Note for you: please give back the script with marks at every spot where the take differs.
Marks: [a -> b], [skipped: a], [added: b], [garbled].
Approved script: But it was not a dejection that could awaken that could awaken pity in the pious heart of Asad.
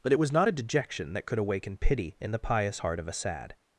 But it was not a dejection that could awaken [skipped: that could awaken] pity in the pious heart of Asad.